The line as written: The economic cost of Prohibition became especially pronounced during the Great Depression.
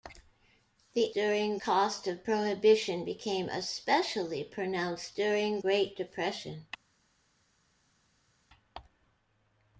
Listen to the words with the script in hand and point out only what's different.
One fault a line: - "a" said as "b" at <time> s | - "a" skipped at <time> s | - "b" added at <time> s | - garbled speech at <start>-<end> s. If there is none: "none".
- "economic" said as "during" at 1.1 s
- "the" skipped at 5.6 s